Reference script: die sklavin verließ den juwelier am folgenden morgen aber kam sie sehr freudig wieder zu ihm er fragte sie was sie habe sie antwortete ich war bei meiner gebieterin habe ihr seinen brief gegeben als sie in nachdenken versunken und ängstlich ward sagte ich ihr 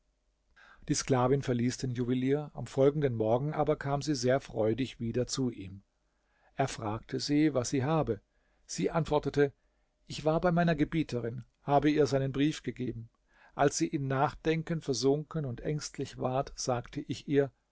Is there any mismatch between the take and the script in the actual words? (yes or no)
no